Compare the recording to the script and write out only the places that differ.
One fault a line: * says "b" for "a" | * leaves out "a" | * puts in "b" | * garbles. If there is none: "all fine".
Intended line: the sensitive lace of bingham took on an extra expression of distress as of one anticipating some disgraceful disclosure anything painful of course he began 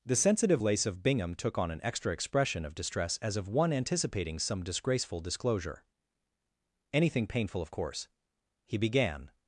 all fine